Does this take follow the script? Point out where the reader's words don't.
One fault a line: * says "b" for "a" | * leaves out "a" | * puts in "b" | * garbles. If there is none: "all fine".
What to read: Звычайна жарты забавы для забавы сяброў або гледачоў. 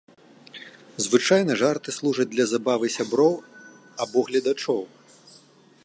* says "служаць" for "забавы"